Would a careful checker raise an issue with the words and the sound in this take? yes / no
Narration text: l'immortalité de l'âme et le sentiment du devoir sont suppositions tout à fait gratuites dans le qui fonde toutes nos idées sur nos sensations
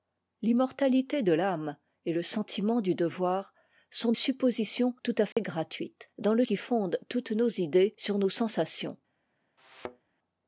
yes